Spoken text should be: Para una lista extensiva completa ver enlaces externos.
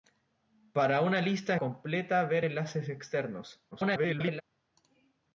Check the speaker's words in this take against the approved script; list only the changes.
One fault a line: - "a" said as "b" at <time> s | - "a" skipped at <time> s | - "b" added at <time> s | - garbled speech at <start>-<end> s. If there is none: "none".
- "extensiva" skipped at 1.6 s
- garbled speech at 3.7-4.4 s